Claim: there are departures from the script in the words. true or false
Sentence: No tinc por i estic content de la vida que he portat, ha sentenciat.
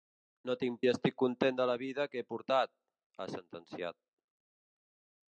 true